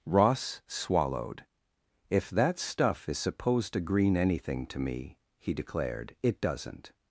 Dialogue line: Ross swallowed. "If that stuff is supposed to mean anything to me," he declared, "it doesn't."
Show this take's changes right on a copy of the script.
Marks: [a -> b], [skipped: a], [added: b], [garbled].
Ross swallowed. "If that stuff is supposed to [mean -> green] anything to me," he declared, "it doesn't."